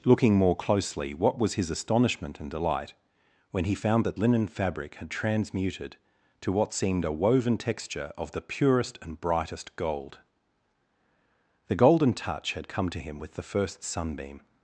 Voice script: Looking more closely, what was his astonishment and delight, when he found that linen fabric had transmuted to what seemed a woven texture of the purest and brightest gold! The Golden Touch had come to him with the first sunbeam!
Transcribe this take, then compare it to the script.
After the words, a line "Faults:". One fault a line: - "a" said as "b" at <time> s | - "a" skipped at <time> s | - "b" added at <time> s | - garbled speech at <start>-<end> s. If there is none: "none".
Looking more closely, what was his astonishment and delight, when he found that linen fabric had transmuted to what seemed a woven texture of the purest and brightest gold! The Golden Touch had come to him with the first sunbeam!
Faults:
none